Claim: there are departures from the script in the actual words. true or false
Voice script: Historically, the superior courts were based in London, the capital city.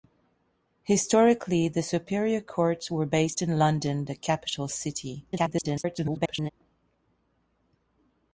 true